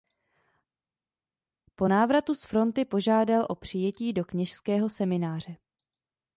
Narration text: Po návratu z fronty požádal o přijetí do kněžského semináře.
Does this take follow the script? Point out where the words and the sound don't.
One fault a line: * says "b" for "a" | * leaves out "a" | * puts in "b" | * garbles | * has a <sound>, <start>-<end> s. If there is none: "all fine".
all fine